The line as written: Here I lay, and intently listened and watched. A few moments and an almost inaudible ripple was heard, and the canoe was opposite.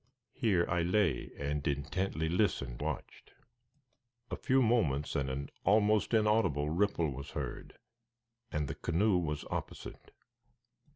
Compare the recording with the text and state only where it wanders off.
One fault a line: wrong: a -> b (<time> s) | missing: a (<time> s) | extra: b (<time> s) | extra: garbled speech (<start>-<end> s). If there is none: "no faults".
missing: and (2.8 s)